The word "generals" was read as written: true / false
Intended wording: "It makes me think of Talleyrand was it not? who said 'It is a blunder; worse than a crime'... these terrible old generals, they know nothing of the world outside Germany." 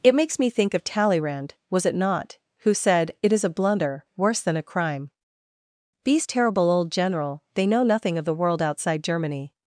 false